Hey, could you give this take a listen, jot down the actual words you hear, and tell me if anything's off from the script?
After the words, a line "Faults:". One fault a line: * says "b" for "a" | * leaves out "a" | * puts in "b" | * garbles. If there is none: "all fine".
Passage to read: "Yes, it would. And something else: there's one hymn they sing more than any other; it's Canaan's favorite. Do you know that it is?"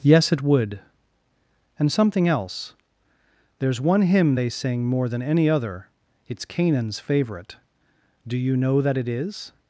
"Yes, it would. And something else: there's one hymn they sing more than any other; it's Canaan's favorite. Do you know that it is?"
Faults:
all fine